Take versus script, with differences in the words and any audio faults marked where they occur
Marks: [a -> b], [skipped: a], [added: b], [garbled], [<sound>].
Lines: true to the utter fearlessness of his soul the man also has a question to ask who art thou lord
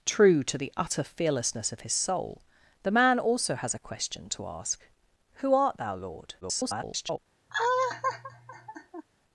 true to the utter fearlessness of his soul the man also has a question to ask who art thou lord [garbled] [laugh]